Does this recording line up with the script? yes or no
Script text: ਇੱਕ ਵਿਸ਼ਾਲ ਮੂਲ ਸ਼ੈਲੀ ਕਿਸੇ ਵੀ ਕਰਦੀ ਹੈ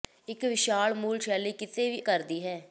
yes